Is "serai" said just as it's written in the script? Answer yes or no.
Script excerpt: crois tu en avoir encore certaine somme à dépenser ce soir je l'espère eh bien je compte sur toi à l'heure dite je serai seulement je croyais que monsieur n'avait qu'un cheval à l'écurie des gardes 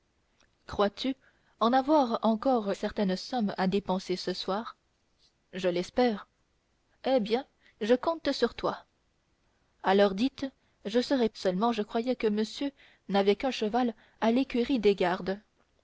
yes